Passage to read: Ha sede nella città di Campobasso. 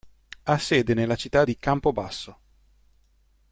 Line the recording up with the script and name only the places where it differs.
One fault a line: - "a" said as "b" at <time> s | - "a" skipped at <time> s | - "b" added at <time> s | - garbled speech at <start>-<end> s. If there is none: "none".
none